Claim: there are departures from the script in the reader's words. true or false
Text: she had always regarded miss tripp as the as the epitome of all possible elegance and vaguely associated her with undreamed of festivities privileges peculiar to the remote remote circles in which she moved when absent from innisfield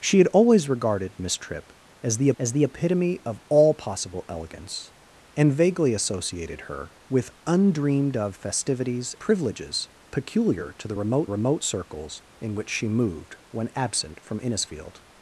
false